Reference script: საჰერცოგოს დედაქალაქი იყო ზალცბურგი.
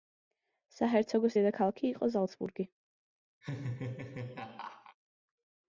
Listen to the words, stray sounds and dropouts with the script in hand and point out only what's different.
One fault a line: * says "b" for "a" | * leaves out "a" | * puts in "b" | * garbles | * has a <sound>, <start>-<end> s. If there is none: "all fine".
* has a laugh, 3.4-5.0 s